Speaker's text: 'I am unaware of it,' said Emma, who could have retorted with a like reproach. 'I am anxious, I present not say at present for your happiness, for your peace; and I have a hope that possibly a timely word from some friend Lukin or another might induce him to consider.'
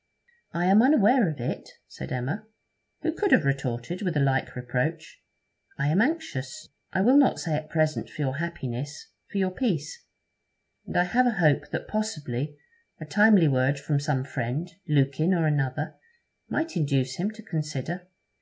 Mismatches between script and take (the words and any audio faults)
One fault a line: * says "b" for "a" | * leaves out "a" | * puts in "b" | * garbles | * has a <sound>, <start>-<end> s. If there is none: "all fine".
* says "will" for "present"